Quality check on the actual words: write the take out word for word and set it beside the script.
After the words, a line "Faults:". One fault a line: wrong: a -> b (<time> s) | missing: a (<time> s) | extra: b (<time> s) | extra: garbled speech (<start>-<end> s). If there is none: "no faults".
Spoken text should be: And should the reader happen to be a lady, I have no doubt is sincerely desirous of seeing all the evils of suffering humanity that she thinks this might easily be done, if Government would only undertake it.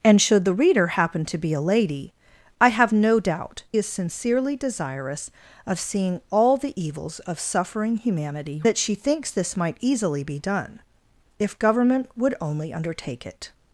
And should the reader happen to be a lady, I have no doubt is sincerely desirous of seeing all the evils of suffering humanity that she thinks this might easily be done, if Government would only undertake it.
Faults:
no faults